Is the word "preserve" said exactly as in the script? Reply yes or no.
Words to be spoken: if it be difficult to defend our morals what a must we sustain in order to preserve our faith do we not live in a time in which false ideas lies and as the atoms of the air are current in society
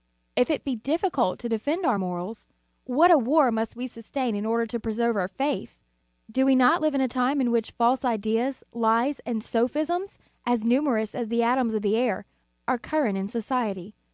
yes